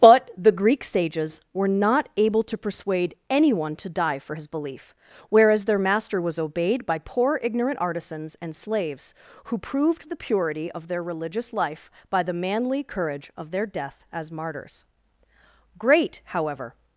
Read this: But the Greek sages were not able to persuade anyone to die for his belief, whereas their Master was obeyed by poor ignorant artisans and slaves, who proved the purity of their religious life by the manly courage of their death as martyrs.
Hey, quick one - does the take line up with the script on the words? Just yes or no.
no